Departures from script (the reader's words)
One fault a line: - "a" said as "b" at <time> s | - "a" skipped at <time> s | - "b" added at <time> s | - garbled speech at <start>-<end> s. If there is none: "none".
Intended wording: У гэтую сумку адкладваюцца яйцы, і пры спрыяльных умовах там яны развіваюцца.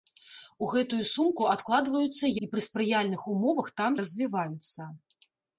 - "яйцы" skipped at 2.2 s
- "яны" skipped at 3.9 s